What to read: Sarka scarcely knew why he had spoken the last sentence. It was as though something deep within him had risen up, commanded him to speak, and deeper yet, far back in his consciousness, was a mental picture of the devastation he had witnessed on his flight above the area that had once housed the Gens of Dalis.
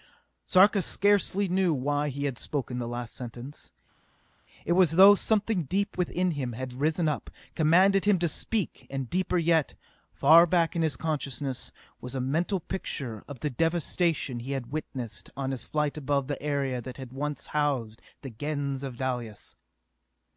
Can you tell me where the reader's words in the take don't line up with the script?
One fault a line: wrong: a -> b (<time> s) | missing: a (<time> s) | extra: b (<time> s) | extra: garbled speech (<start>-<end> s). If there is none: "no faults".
no faults